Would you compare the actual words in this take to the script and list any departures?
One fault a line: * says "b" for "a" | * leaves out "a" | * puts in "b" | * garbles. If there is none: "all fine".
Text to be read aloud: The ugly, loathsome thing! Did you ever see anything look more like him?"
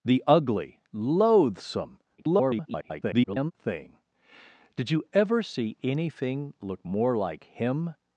* garbles